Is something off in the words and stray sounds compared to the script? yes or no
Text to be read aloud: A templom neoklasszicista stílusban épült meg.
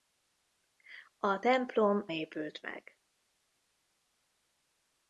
yes